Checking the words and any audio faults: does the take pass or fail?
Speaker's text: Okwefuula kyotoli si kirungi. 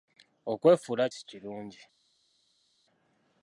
fail